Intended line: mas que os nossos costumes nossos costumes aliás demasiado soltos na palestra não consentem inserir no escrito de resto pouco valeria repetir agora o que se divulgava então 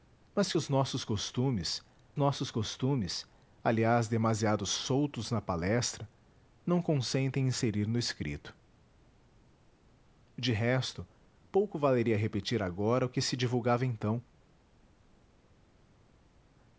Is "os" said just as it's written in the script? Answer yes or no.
yes